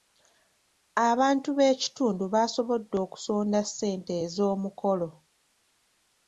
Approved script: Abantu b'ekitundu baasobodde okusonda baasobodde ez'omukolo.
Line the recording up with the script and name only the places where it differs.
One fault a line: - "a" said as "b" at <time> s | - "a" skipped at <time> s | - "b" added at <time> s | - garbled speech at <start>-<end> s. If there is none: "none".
- "baasobodde" said as "ssente" at 3.7 s